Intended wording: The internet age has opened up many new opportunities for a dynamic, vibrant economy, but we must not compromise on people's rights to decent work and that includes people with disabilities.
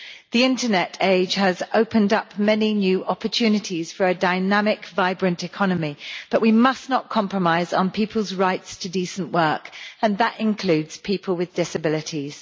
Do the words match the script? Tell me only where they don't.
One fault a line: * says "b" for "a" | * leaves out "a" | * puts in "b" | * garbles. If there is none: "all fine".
all fine